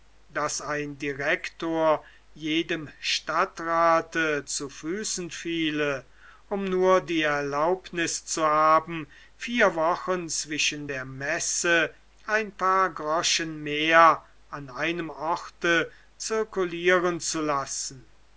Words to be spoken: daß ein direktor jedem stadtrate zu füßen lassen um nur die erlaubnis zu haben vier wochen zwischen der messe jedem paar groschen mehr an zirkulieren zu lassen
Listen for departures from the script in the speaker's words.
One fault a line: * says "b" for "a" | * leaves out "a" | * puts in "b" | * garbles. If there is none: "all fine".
* says "fiele" for "lassen"
* says "ein" for "jedem"
* puts in "einem orte"